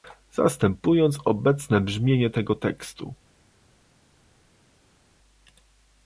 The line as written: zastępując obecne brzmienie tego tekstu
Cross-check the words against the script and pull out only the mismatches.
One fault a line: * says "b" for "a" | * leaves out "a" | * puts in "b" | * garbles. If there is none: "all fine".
all fine